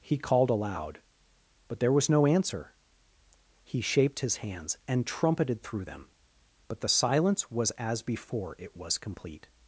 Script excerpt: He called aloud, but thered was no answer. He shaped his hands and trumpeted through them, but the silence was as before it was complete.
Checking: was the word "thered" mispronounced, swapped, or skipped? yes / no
yes